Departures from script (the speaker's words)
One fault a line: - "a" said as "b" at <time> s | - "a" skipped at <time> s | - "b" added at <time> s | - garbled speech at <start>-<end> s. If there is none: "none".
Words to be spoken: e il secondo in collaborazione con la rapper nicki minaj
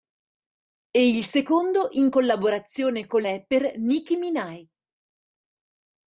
- "la" skipped at 3.2 s